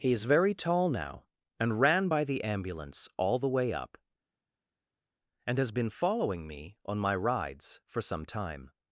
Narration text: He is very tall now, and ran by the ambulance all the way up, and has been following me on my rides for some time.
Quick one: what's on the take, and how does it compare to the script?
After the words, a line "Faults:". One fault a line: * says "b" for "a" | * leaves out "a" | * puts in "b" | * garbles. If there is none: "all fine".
He is very tall now, and ran by the ambulance all the way up, and has been following me on my rides for some time.
Faults:
all fine